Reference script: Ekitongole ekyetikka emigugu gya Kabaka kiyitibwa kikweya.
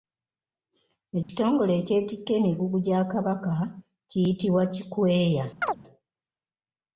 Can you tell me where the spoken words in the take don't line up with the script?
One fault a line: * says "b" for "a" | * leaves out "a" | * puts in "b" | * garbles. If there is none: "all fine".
all fine